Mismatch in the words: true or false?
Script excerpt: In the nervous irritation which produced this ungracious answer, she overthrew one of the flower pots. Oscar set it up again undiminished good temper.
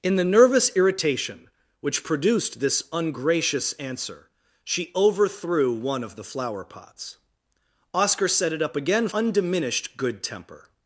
false